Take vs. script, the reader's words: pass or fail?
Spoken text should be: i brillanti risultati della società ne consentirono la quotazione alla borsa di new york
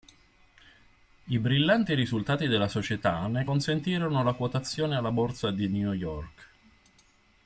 pass